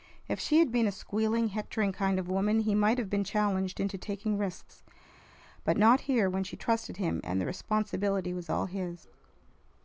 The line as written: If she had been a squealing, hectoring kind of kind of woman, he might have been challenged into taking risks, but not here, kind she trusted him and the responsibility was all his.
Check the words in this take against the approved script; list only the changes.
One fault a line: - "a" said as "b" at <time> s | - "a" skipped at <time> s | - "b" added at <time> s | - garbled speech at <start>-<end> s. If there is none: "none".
- "kind of" skipped at 2.3 s
- "kind" said as "when" at 6.3 s